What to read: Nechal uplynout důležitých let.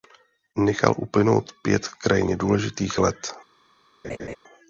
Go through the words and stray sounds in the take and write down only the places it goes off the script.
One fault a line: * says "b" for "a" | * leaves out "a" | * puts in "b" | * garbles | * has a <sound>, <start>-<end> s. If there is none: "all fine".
* puts in "pět krajně"
* has a laugh, 4.0-4.4 s